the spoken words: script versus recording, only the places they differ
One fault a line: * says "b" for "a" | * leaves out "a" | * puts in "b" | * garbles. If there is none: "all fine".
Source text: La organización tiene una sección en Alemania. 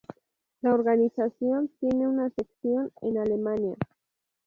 all fine